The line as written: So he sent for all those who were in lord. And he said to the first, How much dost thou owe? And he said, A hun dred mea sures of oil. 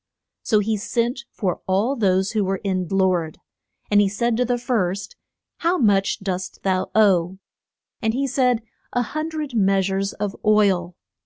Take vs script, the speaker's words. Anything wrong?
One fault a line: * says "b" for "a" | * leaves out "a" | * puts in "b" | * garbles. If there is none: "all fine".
all fine